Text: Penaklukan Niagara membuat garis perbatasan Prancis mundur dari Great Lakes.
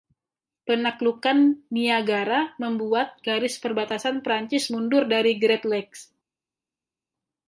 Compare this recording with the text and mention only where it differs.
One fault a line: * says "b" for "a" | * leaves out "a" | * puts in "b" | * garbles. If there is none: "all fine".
all fine